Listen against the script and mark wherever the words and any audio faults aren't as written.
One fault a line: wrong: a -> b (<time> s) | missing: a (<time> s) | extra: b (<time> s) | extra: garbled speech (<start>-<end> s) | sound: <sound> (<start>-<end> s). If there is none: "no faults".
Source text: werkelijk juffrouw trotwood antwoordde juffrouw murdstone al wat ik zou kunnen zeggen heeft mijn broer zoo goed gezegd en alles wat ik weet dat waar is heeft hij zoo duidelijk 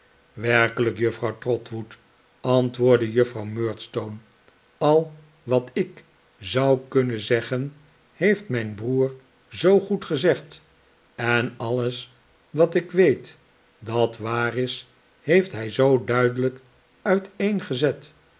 no faults